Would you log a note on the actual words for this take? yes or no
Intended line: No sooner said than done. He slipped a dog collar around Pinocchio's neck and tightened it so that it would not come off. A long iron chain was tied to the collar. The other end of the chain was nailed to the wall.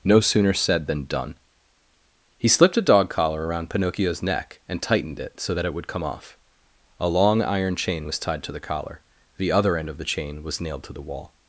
yes